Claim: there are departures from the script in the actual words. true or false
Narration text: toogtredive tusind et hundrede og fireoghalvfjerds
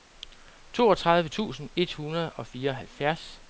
false